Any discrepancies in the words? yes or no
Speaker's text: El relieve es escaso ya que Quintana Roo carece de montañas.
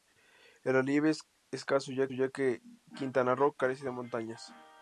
yes